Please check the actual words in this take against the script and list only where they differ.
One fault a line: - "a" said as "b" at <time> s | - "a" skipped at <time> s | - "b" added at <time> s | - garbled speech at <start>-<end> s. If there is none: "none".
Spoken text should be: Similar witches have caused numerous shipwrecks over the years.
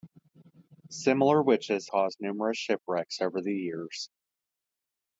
- "have" skipped at 1.9 s